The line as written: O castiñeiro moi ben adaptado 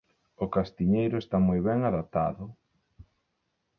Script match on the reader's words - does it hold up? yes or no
no